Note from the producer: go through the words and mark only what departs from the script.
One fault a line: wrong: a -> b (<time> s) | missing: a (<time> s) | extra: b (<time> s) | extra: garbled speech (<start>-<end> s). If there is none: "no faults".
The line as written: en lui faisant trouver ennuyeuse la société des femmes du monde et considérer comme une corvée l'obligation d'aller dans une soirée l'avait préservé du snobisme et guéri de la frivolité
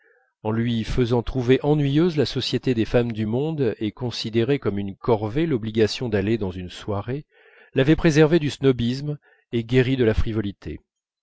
no faults